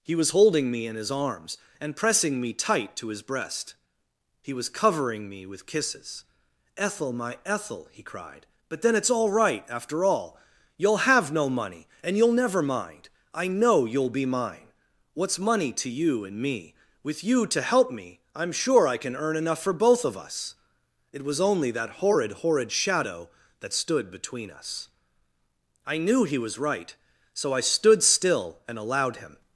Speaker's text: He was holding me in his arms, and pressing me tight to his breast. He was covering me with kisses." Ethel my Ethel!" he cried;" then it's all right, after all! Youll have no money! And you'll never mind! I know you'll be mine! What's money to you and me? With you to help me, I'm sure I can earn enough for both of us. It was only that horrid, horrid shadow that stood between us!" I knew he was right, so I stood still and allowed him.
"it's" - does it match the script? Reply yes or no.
yes